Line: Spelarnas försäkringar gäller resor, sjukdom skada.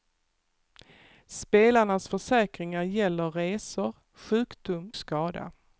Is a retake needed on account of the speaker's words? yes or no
no